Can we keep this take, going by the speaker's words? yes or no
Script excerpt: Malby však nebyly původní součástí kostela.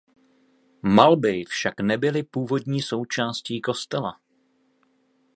yes